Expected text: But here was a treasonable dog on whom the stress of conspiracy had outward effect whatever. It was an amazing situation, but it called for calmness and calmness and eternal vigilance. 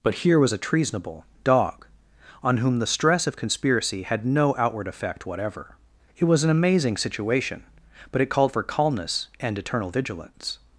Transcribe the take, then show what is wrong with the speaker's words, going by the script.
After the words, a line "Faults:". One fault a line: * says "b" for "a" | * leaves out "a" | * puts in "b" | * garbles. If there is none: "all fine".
But here was a treasonable dog on whom the stress of conspiracy had no outward effect whatever. It was an amazing situation, but it called for calmness and eternal vigilance.
Faults:
* puts in "no"
* leaves out "calmness and"